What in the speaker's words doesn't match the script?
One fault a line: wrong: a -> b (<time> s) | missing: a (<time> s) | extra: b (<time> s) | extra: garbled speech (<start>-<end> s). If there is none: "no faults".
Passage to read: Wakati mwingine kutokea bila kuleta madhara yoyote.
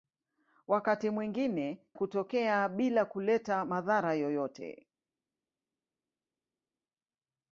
no faults